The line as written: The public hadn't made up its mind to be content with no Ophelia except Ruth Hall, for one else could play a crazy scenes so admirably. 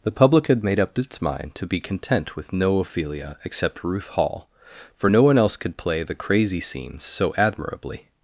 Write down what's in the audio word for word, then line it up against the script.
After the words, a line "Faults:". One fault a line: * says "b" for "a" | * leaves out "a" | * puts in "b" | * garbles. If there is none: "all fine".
The public had made up its mind to be content with no Ophelia except Ruth Hall, for no one else could play the crazy scenes so admirably.
Faults:
* says "had" for "hadn't"
* puts in "no"
* says "the" for "a"